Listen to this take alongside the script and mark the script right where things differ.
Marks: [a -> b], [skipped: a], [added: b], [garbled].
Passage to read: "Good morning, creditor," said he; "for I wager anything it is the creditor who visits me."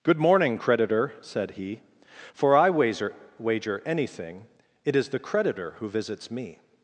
"Good morning, creditor," said he; "for I wager [added: wager] anything it is the creditor who visits me."